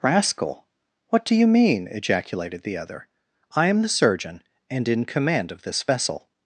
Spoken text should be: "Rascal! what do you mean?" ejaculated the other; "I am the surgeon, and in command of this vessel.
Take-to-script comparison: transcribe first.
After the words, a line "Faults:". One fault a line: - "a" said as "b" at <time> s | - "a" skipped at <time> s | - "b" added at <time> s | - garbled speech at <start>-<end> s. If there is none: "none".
"Rascal! what do you mean?" ejaculated the other; "I am the surgeon, and in command of this vessel.
Faults:
none